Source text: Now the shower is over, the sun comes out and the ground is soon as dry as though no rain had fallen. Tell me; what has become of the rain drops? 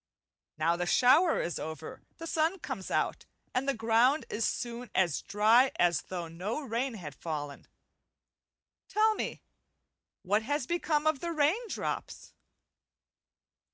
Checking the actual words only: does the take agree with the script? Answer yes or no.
yes